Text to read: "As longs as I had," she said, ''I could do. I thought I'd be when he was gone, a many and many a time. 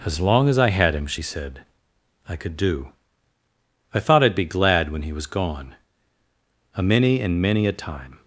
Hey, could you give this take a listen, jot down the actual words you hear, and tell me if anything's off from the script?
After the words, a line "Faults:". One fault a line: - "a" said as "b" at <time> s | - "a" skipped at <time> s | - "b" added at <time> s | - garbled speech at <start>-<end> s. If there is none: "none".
"As long as I had him," she said, ''I could do. I thought I'd be glad when he was gone, a many and many a time.
Faults:
- "longs" said as "long" at 0.2 s
- "him" added at 0.9 s
- "glad" added at 4.5 s